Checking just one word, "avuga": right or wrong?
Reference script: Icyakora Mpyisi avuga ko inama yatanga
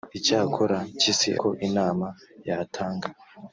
wrong